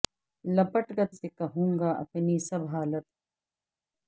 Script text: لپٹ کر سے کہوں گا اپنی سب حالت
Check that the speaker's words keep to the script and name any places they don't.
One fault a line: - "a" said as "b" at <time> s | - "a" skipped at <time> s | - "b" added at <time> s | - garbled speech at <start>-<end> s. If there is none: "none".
none